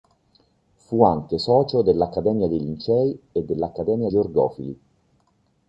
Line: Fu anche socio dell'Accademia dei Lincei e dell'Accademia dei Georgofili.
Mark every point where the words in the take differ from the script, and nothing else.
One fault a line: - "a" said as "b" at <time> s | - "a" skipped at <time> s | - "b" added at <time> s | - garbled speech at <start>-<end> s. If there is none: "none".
- "dei" skipped at 4.1 s